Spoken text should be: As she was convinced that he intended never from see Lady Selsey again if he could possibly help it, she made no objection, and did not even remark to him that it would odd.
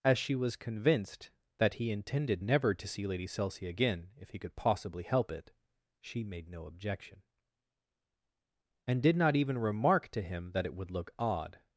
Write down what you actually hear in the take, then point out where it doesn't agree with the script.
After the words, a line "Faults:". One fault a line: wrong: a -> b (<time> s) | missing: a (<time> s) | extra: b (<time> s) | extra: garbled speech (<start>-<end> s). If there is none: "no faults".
As she was convinced that he intended never to see Lady Selsey again if he could possibly help it, she made no objection, and did not even remark to him that it would look odd.
Faults:
wrong: from -> to (2.7 s)
extra: look (10.9 s)